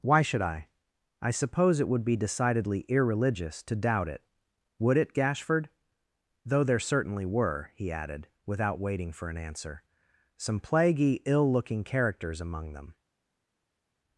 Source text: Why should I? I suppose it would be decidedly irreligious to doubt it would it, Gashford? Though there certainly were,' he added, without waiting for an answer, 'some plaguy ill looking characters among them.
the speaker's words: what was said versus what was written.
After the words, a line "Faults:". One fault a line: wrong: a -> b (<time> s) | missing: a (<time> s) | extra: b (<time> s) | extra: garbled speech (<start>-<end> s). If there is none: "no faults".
Why should I? I suppose it would be decidedly irreligious to doubt it would it, Gashford? Though there certainly were,' he added, without waiting for an answer, 'some plaguy ill looking characters among them.
Faults:
no faults